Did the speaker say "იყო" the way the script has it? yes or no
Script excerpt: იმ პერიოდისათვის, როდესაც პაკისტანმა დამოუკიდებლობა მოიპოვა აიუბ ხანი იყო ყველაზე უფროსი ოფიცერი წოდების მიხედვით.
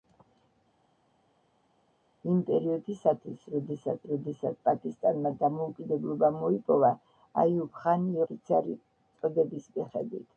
no